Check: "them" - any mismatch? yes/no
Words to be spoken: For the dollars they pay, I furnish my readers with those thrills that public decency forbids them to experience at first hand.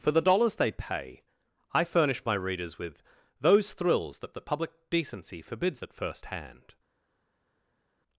yes